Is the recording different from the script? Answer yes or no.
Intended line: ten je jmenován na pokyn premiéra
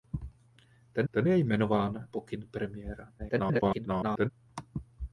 yes